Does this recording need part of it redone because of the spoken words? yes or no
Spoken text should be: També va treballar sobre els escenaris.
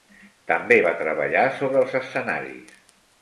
no